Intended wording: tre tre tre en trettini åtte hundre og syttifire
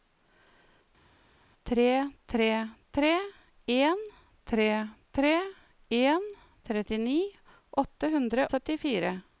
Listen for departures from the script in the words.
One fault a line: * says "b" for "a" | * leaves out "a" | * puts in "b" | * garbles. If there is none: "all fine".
* puts in "tre tre en"
* leaves out "og"